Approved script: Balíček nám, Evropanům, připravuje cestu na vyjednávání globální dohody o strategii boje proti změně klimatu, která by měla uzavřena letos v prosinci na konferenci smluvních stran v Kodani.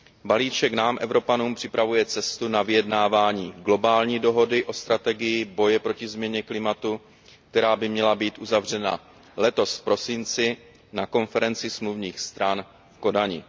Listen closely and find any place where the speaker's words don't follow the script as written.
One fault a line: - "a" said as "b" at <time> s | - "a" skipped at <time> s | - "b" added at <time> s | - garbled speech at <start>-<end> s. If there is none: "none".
- "být" added at 8.2 s